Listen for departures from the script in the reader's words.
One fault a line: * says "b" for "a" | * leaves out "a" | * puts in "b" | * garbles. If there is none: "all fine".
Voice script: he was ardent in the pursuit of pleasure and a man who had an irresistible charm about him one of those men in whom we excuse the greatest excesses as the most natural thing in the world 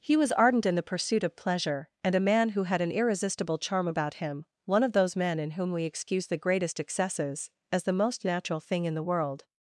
all fine